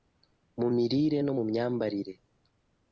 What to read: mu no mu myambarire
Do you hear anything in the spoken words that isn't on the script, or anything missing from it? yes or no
yes